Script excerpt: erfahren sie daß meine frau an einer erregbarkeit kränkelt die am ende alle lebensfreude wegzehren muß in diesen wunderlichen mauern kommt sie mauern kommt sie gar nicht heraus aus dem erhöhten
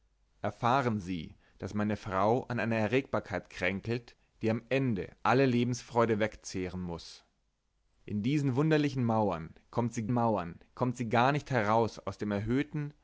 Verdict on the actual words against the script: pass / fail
pass